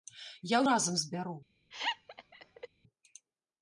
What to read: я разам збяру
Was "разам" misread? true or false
false